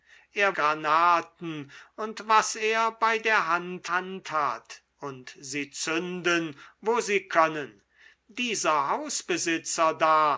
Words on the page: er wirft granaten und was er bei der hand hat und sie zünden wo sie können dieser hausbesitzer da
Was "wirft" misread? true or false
true